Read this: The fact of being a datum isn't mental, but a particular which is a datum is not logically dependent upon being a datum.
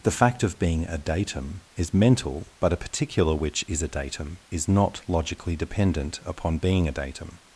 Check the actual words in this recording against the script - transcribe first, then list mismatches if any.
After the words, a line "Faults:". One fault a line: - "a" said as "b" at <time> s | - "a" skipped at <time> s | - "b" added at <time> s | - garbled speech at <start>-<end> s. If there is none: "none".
The fact of being a datum is mental, but a particular which is a datum is not logically dependent upon being a datum.
Faults:
- "isn't" said as "is" at 1.8 s